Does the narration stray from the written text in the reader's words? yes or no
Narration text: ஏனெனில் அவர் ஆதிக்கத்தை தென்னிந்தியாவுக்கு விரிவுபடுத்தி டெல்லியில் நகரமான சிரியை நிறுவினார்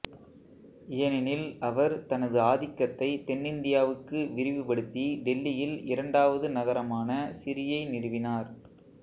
yes